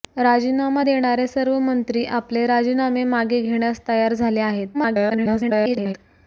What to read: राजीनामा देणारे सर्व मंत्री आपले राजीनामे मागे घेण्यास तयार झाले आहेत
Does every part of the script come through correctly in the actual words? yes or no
no